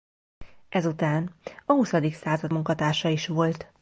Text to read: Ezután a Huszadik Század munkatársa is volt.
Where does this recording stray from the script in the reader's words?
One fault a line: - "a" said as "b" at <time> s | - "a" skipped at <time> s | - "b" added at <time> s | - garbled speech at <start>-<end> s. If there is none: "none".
none